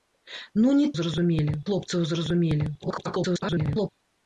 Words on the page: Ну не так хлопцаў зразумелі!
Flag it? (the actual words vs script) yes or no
yes